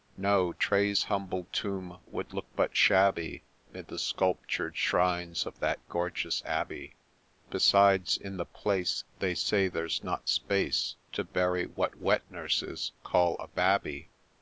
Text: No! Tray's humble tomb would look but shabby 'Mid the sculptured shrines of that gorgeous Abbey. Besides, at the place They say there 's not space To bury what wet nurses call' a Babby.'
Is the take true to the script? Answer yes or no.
no